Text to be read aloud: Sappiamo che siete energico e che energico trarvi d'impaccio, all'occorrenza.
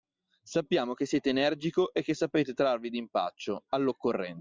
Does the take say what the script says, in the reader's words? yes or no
no